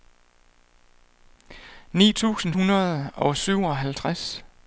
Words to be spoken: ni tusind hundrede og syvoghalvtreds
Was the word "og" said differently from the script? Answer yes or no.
no